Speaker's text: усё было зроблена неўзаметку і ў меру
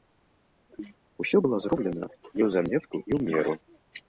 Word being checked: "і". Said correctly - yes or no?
yes